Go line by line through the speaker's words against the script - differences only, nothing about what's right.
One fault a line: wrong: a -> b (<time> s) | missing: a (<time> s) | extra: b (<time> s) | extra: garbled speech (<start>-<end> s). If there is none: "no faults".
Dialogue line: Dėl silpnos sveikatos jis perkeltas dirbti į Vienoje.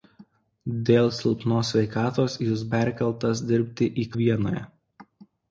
no faults